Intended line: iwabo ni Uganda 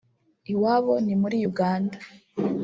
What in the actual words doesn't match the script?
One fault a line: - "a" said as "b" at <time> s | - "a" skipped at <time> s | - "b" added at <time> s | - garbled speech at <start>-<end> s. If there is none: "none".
- "muri" added at 1.2 s